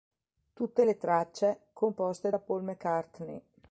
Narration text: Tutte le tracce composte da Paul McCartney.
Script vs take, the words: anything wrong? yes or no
no